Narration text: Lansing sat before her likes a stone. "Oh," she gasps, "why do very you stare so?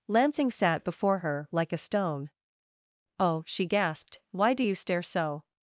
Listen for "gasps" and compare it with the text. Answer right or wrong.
wrong